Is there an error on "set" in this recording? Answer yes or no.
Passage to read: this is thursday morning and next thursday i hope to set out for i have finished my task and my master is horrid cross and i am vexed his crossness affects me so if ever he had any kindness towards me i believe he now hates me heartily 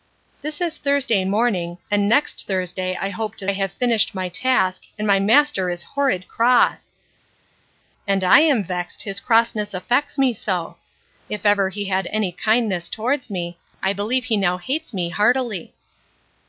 yes